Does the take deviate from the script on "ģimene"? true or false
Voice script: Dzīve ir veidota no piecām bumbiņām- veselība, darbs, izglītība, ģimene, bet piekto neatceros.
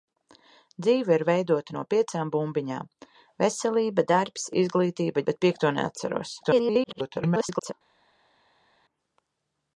true